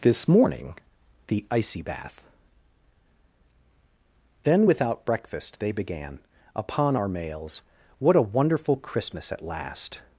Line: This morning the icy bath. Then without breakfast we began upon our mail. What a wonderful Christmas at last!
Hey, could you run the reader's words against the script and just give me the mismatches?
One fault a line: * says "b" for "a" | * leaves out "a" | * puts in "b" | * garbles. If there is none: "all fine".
* says "they" for "we"
* says "mails" for "mail"